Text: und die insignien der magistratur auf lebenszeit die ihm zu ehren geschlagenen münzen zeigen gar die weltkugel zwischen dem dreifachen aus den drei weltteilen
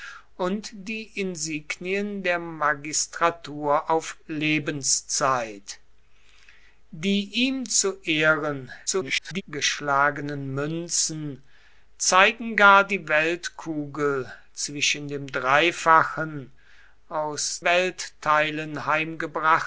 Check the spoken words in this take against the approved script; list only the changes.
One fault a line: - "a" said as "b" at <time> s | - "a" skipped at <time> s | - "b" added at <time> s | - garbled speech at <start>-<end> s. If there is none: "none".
- garbled speech at 8.9-9.4 s
- "den drei" skipped at 17.6 s